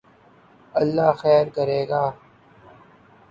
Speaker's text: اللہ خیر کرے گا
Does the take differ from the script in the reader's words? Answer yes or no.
no